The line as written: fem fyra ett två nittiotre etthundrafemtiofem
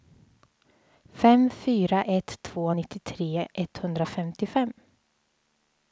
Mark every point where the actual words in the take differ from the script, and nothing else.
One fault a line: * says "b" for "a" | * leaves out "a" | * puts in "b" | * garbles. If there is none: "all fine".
all fine